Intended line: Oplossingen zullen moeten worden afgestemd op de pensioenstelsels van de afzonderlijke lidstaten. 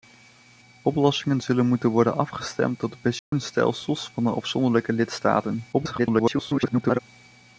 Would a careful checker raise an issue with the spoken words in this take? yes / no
yes